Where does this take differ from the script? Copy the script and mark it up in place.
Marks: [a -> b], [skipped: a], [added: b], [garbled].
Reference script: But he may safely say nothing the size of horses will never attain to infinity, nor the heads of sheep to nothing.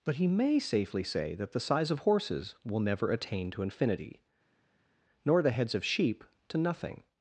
But he may safely say [nothing -> that] the size of horses will never attain to infinity, nor the heads of sheep to nothing.